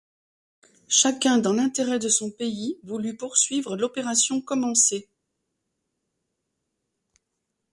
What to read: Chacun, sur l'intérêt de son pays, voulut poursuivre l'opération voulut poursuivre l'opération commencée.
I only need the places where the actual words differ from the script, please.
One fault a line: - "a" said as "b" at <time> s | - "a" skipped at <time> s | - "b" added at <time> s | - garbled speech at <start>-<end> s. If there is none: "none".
- "sur" said as "dans" at 1.4 s
- "voulut poursuivre l'opération" skipped at 4.4 s